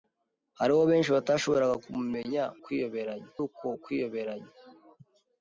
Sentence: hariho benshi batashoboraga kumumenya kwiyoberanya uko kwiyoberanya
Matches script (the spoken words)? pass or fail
pass